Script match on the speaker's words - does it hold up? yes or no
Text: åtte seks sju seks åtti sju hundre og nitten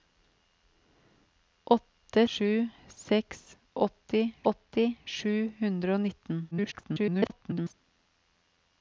no